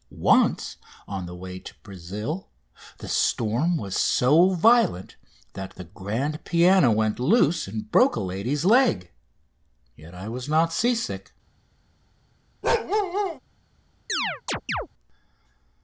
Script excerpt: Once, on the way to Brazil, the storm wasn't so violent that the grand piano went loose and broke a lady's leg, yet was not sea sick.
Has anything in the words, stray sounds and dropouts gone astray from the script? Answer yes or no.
yes